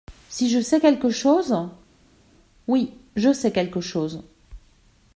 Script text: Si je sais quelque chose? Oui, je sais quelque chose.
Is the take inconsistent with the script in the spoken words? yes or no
no